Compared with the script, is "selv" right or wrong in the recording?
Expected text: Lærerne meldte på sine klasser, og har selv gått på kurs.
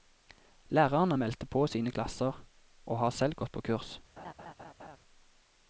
right